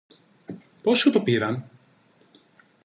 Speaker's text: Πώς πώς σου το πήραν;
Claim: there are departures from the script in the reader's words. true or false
true